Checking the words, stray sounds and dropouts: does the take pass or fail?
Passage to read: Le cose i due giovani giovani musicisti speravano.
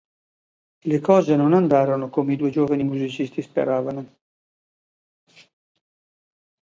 fail